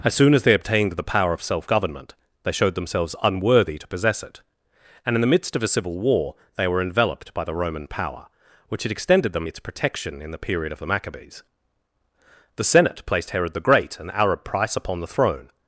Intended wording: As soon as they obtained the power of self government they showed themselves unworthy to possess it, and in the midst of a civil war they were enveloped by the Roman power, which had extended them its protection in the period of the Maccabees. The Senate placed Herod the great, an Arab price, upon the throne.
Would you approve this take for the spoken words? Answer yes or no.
yes